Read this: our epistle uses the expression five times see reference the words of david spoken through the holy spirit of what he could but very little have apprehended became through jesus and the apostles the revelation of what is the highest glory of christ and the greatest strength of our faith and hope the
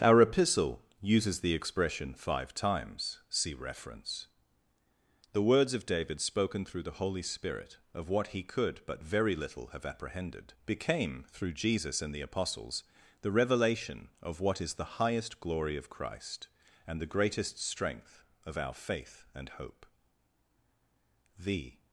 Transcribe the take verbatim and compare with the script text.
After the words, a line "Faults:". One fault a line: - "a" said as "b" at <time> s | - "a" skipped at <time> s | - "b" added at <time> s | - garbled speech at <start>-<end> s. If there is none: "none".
our epistle uses the expression five times see reference the words of david spoken through the holy spirit of what he could but very little have apprehended became through jesus and the apostles the revelation of what is the highest glory of christ and the greatest strength of our faith and hope the
Faults:
none